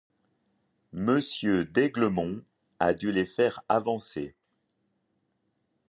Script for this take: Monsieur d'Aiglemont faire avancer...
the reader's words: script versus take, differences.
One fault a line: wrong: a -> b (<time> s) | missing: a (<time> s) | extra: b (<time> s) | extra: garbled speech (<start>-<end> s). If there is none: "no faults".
extra: a dû les (2.8 s)